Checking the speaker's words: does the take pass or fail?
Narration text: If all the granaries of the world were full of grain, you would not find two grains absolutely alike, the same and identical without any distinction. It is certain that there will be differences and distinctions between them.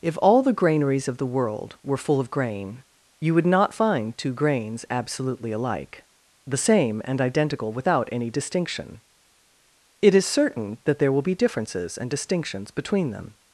pass